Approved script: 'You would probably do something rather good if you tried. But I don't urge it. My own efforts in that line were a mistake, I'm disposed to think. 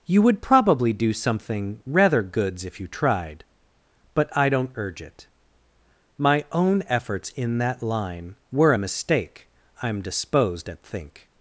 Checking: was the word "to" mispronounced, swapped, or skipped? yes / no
yes